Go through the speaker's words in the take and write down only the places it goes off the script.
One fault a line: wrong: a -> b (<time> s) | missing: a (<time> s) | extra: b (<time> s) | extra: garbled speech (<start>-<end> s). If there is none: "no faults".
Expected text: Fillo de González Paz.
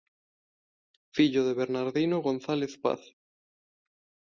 extra: Bernardino (1.5 s)